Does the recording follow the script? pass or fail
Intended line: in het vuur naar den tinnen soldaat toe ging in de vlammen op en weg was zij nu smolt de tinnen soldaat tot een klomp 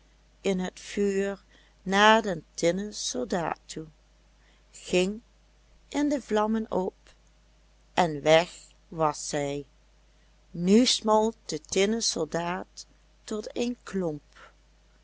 pass